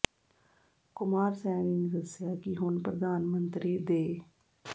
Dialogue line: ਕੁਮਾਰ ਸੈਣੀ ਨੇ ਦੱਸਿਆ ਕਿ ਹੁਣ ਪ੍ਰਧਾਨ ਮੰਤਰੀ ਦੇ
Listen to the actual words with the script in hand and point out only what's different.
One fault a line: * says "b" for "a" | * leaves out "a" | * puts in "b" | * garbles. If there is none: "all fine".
all fine